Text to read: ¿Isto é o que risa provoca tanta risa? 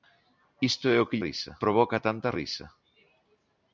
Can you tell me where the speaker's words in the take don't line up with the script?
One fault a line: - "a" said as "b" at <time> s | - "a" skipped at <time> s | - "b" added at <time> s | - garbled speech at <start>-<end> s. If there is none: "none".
none